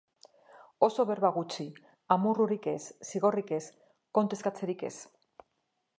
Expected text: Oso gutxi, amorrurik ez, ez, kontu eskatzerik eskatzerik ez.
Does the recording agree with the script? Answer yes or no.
no